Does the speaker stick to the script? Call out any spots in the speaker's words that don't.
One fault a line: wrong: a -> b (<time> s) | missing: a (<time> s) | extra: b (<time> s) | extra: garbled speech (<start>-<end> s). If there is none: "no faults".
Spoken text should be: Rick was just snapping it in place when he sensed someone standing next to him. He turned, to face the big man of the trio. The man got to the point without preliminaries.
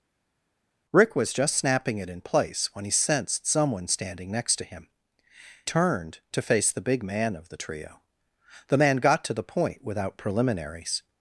missing: He (4.9 s)